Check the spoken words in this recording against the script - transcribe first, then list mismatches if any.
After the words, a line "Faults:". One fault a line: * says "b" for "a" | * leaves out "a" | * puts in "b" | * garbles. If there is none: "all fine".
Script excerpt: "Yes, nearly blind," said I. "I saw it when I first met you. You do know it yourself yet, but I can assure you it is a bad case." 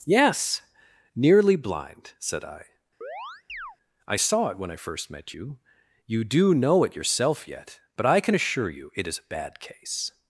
"Yes, nearly blind," said I. "I saw it when I first met you. You do know it yourself yet, but I can assure you it is a bad case."
Faults:
all fine